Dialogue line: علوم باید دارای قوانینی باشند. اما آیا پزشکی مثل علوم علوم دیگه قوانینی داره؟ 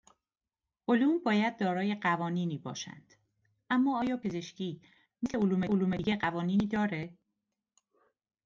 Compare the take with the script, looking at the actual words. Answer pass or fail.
pass